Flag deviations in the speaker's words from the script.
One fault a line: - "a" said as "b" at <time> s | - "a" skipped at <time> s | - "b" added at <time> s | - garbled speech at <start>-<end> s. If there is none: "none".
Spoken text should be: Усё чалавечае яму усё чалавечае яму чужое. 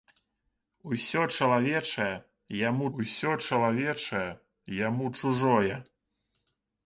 none